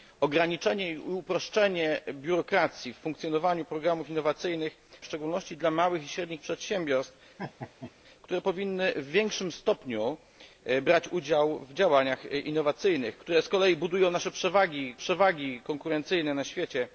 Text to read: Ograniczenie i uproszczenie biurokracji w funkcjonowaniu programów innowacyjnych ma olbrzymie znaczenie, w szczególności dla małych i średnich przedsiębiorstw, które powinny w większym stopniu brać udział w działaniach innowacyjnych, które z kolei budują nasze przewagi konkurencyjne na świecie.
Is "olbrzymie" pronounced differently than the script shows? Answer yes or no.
yes